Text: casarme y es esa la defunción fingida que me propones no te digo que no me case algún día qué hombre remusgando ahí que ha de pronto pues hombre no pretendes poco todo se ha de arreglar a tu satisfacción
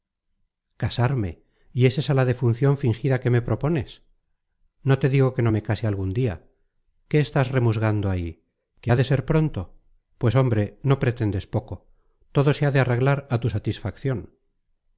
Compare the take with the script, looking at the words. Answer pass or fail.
fail